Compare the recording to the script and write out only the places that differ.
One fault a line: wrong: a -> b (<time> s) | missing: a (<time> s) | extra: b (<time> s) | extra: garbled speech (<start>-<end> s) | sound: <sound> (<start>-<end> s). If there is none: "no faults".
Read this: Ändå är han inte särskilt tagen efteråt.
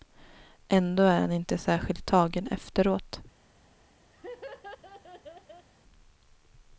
sound: laugh (4.1-5.7 s)